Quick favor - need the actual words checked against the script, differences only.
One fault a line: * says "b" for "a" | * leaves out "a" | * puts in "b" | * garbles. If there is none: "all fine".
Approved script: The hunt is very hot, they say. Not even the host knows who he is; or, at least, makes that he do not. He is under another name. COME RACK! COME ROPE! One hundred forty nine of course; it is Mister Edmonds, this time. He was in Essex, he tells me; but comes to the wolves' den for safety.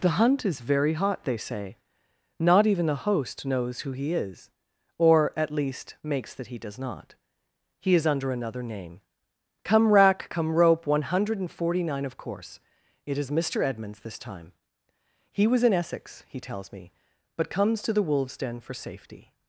* says "does" for "do"